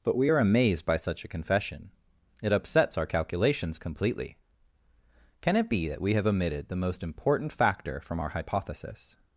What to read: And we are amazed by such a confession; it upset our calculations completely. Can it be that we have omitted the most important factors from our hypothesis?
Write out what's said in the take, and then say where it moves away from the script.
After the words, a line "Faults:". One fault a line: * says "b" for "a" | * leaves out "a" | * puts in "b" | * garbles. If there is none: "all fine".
But we are amazed by such a confession; it upsets our calculations completely. Can it be that we have omitted the most important factor from our hypothesis?
Faults:
* says "But" for "And"
* says "upsets" for "upset"
* says "factor" for "factors"